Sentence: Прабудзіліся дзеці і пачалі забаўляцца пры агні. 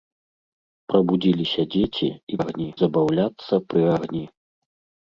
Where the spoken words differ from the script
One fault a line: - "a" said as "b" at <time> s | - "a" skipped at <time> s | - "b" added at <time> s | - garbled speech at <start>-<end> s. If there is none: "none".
- "пачалі" said as "агні" at 2.4 s